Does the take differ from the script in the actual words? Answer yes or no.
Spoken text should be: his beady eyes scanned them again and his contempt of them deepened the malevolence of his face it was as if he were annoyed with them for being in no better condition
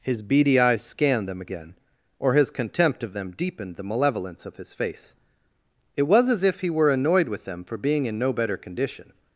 yes